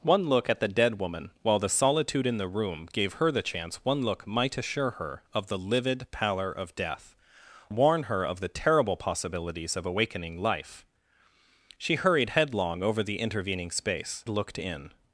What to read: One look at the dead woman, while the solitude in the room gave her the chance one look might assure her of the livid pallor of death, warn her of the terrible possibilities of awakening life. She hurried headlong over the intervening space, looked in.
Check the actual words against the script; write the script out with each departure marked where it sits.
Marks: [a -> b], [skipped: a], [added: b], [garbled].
One look at the dead woman, while the solitude in the room gave her the chance one look might assure her of the livid pallor of death, warn her of the terrible possibilities of awakening life. She hurried headlong over the intervening space, looked in.